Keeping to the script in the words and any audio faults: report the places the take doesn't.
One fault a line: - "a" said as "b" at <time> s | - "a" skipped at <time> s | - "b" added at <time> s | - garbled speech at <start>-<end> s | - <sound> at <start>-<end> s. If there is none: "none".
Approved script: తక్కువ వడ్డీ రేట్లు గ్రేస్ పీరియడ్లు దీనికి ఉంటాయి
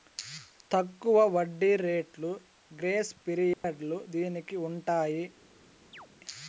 - dropout at 3.5-3.6 s
- chirp at 5.9-6.1 s